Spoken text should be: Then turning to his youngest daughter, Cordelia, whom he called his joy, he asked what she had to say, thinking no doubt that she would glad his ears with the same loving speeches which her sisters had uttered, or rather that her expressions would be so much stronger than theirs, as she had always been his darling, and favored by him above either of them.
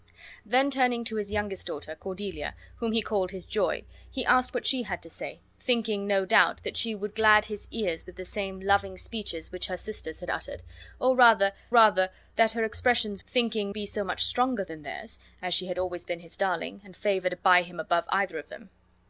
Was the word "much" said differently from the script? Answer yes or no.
no